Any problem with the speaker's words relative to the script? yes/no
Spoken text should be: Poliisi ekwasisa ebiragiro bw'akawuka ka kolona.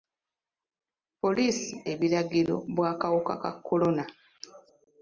yes